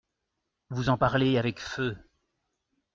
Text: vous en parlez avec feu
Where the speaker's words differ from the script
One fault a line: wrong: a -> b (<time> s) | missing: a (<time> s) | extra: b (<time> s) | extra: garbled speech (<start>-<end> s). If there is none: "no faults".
no faults